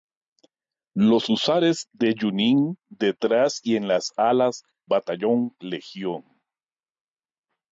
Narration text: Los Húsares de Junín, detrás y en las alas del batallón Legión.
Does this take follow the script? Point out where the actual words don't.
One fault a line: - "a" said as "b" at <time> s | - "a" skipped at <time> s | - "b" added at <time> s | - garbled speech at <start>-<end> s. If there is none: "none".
- "del" skipped at 4.6 s